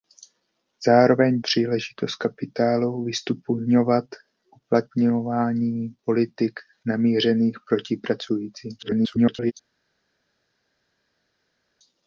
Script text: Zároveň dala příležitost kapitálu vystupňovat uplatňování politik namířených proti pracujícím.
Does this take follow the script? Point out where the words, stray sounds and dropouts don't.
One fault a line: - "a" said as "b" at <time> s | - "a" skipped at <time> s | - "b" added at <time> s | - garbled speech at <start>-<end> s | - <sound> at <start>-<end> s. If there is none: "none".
- "dala" skipped at 1.4 s
- garbled speech at 8.8-9.5 s